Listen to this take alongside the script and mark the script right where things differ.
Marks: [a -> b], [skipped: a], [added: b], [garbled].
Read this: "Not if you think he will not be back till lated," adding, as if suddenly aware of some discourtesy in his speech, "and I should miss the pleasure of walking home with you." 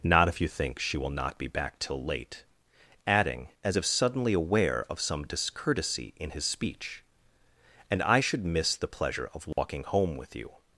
"Not if you think [he -> she] will not be back till [lated," -> late] adding, as if suddenly aware of some discourtesy in his speech, "and I should miss the pleasure of walking home with you."